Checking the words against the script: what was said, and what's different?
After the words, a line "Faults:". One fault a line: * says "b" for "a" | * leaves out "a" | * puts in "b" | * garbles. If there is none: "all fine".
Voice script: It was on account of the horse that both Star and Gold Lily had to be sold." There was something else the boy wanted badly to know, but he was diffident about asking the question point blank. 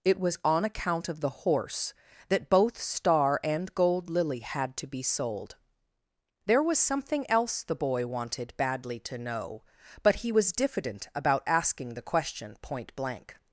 It was on account of the horse that both Star and Gold Lily had to be sold." There was something else the boy wanted badly to know, but he was diffident about asking the question point blank.
Faults:
all fine